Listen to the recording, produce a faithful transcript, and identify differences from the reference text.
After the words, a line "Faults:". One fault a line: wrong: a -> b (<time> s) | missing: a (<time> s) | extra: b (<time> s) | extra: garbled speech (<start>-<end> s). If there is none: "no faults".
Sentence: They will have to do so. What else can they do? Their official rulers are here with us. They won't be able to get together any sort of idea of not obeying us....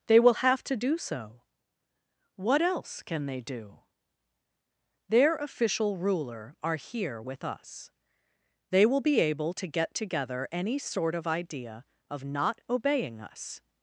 They will have to do so. What else can they do? Their official ruler are here with us. They will be able to get together any sort of idea of not obeying us....
Faults:
wrong: rulers -> ruler (6.0 s)
wrong: won't -> will (8.8 s)